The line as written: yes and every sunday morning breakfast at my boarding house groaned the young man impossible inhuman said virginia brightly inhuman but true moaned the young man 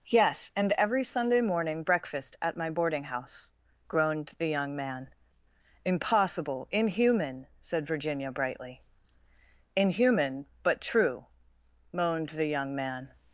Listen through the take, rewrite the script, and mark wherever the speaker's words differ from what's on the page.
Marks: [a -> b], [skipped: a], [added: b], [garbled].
yes and every sunday morning breakfast at my boarding house groaned the young man impossible inhuman said virginia brightly inhuman but true moaned the young man